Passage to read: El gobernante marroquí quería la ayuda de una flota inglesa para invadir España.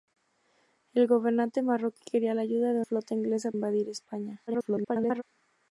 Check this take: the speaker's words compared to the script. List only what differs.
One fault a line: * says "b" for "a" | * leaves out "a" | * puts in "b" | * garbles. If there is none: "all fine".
* leaves out "una"
* leaves out "para"
* garbles